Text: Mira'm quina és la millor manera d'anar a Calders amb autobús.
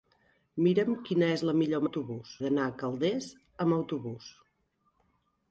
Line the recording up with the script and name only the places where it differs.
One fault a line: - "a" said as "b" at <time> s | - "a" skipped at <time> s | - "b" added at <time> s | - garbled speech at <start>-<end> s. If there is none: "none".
- "manera" said as "autobús" at 1.8 s